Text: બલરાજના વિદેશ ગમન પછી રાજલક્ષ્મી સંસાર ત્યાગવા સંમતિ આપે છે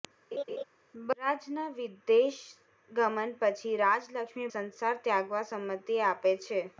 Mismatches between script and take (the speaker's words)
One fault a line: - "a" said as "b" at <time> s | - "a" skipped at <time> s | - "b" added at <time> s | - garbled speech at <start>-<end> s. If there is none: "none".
none